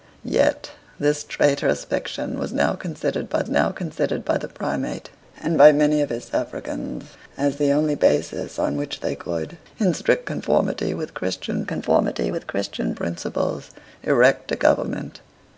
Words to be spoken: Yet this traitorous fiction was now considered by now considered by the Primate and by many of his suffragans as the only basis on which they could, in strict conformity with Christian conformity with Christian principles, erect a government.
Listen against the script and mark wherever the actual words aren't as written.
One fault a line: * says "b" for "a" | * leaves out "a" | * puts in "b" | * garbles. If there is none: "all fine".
all fine